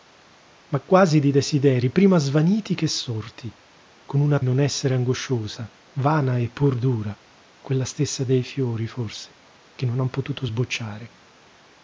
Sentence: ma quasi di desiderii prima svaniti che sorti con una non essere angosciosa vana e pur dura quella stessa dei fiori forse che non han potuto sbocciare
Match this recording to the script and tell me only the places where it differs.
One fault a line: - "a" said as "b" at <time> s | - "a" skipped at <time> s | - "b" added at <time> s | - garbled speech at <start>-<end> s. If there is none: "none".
none